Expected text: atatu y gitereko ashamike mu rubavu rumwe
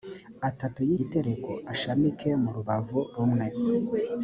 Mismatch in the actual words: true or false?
false